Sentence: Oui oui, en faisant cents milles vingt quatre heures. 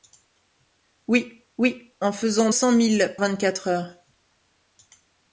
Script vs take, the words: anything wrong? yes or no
no